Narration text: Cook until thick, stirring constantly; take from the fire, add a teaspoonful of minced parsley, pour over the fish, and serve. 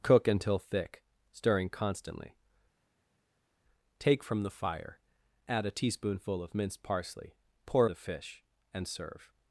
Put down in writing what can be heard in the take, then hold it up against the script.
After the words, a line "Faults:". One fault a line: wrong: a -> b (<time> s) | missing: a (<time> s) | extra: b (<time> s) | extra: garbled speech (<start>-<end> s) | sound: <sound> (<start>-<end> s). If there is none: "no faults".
Cook until thick, stirring constantly; take from the fire, add a teaspoonful of minced parsley, pour the fish, and serve.
Faults:
missing: over (7.9 s)